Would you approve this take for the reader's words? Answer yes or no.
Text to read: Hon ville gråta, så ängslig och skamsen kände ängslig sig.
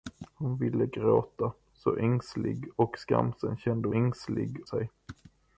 yes